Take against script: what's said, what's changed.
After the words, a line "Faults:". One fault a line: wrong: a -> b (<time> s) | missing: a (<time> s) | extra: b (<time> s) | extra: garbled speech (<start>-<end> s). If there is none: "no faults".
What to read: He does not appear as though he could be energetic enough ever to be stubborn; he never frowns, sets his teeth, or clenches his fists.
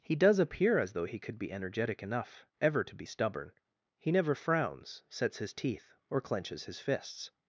He does appear as though he could be energetic enough ever to be stubborn; he never frowns, sets his teeth, or clenches his fists.
Faults:
missing: not (0.4 s)